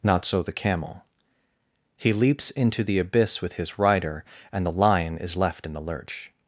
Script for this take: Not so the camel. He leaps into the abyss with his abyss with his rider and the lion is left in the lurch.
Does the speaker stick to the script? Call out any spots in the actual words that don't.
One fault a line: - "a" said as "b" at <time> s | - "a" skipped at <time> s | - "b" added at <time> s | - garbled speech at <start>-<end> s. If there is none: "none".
- "abyss with his" skipped at 3.8 s